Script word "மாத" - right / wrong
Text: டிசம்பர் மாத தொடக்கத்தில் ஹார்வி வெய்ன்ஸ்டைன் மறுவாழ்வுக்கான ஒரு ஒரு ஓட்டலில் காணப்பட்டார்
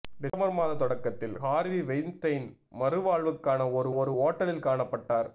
right